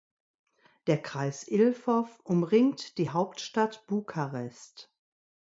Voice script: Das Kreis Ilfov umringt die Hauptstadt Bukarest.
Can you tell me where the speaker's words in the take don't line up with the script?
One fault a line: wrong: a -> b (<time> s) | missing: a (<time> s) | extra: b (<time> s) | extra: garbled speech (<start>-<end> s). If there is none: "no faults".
wrong: Das -> Der (0.9 s)